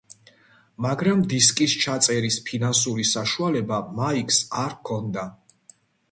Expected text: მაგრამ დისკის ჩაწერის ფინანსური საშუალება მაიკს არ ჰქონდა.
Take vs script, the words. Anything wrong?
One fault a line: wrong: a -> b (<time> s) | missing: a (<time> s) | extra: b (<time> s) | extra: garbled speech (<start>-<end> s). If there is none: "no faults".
no faults